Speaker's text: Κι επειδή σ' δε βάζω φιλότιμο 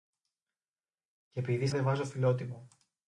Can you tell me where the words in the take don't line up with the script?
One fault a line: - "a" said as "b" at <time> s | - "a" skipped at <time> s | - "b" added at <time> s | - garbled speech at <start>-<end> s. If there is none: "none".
none